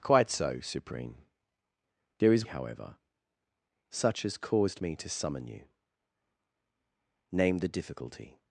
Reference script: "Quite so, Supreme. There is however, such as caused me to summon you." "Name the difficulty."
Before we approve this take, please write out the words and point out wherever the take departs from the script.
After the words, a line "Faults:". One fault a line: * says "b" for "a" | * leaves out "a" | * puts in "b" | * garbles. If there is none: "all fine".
"Quite so, Supreme. There is however, such as caused me to summon you." "Name the difficulty."
Faults:
all fine